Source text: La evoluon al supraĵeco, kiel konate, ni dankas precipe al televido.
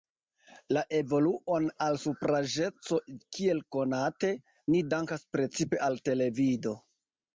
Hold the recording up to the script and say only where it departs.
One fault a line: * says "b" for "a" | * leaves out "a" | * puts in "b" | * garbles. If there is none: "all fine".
all fine